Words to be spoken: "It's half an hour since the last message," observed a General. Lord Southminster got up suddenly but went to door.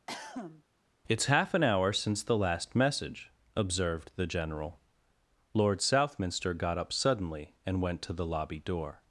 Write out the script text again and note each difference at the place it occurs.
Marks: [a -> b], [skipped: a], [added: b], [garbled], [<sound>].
[cough] "It's half an hour since the last message," observed [a -> the] General. Lord Southminster got up suddenly [but -> and] went to [added: the lobby] door.